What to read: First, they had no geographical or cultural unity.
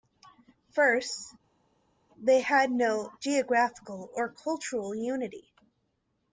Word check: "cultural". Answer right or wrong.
right